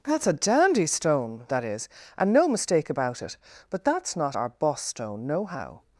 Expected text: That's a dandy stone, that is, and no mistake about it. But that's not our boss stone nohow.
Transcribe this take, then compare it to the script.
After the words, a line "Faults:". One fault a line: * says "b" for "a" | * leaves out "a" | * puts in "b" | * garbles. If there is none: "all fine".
That's a dandy stone, that is, and no mistake about it. But that's not our boss stone nohow.
Faults:
all fine